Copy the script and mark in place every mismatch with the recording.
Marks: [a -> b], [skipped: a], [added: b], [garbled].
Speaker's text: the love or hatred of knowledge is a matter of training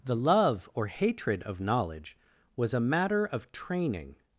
the love or hatred of knowledge [is -> was] a matter of training